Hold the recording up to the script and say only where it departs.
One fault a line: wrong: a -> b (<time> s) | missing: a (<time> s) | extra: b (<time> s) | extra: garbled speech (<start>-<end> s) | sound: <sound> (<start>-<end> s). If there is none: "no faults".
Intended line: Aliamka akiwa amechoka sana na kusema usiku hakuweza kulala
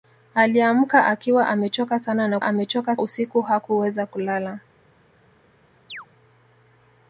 wrong: kusema -> amechoka (2.4 s)
sound: chirp (5.9-6.1 s)